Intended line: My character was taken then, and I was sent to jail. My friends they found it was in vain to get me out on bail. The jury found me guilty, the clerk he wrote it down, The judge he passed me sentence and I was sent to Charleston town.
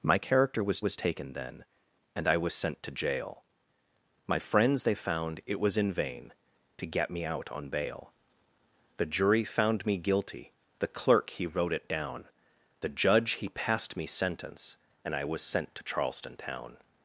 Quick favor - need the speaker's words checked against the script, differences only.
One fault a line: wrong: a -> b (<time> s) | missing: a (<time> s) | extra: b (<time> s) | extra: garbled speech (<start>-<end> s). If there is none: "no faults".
extra: was (0.8 s)